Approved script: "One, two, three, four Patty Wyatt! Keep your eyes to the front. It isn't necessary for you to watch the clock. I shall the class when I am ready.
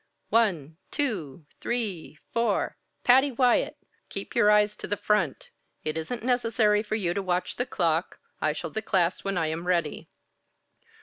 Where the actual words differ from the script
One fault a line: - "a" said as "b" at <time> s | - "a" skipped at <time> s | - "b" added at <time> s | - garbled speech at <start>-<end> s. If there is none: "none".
none